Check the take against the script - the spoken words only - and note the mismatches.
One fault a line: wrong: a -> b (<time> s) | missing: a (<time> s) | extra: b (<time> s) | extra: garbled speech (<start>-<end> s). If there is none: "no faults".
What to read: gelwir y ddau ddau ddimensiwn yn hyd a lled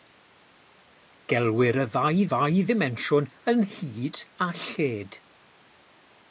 no faults